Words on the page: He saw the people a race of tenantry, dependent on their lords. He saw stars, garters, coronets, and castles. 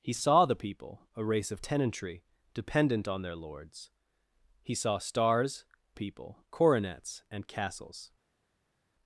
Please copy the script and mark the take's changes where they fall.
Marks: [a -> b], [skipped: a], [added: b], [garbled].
He saw the people a race of tenantry, dependent on their lords. He saw stars, [garters, -> people] coronets, and castles.